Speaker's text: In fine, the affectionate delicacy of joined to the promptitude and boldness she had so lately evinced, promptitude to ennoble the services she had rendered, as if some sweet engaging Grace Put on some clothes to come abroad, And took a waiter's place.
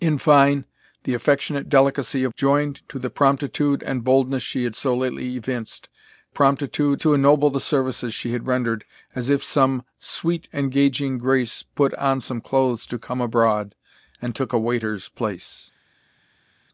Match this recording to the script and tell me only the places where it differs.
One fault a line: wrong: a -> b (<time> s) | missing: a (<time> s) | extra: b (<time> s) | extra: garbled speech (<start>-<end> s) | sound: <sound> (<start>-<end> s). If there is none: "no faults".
no faults